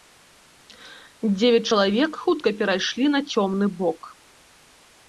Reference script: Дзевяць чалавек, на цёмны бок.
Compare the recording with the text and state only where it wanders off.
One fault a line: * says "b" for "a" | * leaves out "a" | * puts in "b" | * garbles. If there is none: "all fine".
* puts in "хутка перайшлі"